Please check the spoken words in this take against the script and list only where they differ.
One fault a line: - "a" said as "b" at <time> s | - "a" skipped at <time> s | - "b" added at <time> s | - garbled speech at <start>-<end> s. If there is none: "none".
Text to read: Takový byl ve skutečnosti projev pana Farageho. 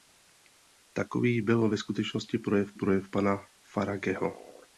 - "projev" added at 2.7 s